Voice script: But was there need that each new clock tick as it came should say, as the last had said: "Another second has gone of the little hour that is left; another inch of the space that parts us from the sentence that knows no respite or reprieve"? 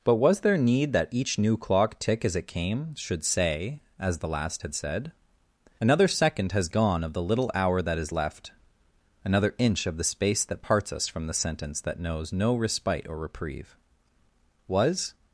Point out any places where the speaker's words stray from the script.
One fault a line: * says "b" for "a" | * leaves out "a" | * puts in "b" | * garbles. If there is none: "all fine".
* puts in "Was"